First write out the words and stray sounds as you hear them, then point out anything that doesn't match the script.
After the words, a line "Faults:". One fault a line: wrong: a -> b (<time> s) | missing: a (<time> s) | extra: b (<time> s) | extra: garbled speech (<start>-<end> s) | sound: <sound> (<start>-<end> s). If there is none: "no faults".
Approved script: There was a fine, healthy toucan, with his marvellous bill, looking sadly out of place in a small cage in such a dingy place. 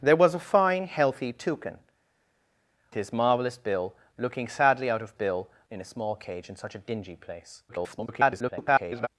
There was a fine, healthy toucan, his marvellous bill, looking sadly out of bill in a small cage in such a dingy place. [garbled]
Faults:
missing: with (1.8 s)
wrong: place -> bill (5.1 s)
extra: garbled speech (7.7-9.1 s)